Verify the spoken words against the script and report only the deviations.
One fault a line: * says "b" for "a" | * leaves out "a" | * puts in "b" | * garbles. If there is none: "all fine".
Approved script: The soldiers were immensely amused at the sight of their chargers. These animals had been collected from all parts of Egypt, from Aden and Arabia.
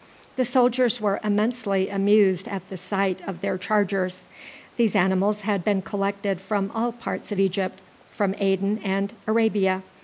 all fine